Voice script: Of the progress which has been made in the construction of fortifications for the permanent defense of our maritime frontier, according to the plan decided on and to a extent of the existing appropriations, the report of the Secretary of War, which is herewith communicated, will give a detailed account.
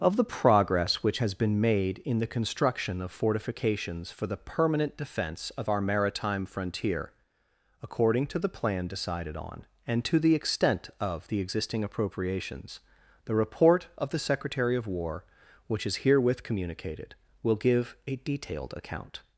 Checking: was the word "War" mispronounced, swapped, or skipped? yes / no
no